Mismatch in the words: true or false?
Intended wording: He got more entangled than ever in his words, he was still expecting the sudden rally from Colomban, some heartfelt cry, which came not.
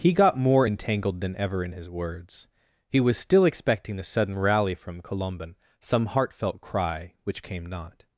false